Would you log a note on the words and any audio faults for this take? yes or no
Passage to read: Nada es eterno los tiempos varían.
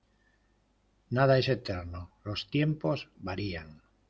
no